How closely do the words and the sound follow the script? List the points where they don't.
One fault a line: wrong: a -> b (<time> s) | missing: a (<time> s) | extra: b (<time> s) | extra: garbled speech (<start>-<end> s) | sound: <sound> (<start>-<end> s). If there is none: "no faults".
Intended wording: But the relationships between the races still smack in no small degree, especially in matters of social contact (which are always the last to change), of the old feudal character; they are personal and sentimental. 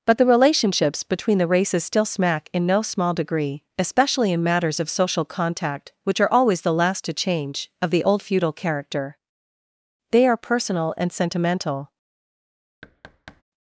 sound: thud (12.8-13.4 s)